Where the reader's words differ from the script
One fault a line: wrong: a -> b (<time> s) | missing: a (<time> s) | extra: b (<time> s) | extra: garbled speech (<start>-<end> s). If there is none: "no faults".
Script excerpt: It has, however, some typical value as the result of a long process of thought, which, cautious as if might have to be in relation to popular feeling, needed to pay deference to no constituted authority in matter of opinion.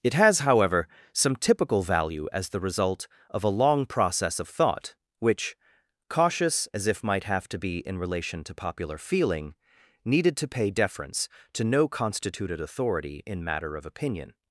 no faults